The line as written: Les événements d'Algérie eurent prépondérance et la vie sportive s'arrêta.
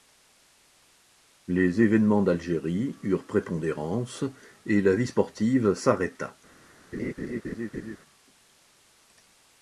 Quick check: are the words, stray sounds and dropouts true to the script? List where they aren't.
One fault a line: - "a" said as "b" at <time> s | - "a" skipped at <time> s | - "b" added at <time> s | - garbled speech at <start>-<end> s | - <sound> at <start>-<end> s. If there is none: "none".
- laugh at 6.9-8.0 s